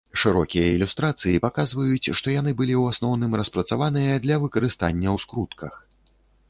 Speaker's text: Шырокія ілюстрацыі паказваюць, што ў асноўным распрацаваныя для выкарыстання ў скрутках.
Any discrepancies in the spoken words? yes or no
yes